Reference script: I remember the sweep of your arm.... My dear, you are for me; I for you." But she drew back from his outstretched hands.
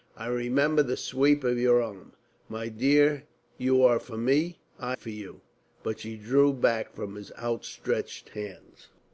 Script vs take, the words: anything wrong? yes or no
no